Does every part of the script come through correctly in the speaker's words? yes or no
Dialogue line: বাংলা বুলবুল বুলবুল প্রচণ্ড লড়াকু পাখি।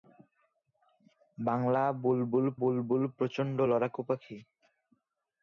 yes